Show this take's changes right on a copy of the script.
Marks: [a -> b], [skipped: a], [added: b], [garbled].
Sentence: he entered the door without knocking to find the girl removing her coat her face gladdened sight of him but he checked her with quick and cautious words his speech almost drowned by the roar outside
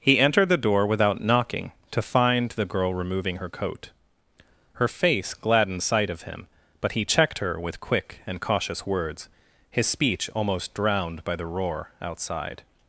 he entered the door without knocking to find the girl removing her coat her face gladdened sight of him but he checked her with quick and cautious words his speech almost drowned by the roar outside